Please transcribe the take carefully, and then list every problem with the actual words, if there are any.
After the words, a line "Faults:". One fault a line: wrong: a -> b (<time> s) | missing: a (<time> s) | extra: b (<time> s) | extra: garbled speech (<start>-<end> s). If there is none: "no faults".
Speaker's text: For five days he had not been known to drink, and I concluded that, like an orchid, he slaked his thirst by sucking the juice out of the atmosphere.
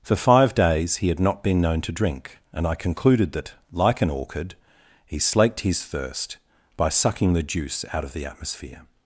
For five days he had not been known to drink, and I concluded that, like an orchid, he slaked his thirst by sucking the juice out of the atmosphere.
Faults:
no faults